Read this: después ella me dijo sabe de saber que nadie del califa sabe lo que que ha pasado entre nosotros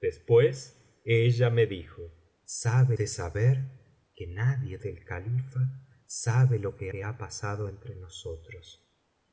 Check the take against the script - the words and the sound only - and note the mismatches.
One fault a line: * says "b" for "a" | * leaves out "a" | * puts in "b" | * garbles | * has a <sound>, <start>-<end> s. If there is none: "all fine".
all fine